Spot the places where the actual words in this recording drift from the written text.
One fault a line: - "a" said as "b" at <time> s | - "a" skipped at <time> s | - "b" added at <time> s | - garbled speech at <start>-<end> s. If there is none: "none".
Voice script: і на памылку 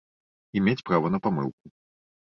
- "мець права" added at 0.7 s